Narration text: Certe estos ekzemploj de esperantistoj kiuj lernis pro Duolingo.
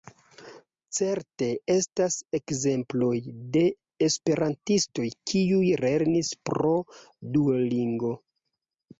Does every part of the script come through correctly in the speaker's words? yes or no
no